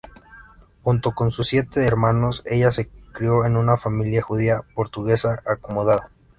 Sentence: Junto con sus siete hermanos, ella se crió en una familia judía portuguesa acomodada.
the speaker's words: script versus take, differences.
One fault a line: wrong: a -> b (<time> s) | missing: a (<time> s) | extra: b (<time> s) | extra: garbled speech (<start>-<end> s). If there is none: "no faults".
no faults